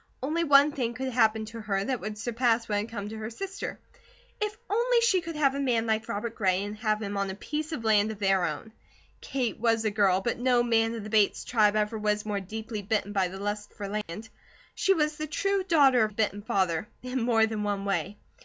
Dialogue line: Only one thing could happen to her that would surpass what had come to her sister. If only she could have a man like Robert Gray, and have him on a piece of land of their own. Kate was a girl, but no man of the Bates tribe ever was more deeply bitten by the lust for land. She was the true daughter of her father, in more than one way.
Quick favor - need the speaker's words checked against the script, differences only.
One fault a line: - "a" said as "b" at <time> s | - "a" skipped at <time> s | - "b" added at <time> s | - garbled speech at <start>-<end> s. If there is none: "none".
- "her" said as "bitten" at 16.1 s